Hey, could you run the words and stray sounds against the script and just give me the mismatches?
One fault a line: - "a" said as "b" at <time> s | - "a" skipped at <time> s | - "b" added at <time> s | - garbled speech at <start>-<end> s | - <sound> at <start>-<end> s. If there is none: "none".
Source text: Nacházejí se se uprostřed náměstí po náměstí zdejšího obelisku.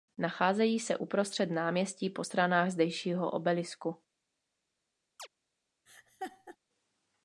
- "se" skipped at 1.0 s
- "náměstí" said as "stranách" at 2.2 s
- chirp at 5.2-5.3 s
- laugh at 5.9-6.6 s